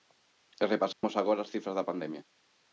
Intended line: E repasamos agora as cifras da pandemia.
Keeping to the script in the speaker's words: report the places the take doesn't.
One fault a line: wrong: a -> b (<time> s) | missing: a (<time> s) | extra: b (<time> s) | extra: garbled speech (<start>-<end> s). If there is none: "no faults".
no faults